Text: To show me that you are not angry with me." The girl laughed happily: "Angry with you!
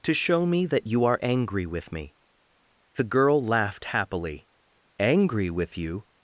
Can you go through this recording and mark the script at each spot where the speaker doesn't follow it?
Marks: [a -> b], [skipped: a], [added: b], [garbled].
To show me that you are [skipped: not] angry with me." The girl laughed happily: "Angry with you!